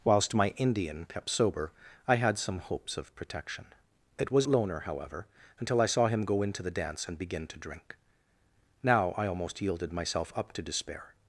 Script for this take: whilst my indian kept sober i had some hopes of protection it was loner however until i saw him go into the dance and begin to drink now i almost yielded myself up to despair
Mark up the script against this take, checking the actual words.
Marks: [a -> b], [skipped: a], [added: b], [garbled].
whilst my indian kept sober i had some hopes of protection it was loner however until i saw him go into the dance and begin to drink now i almost yielded myself up to despair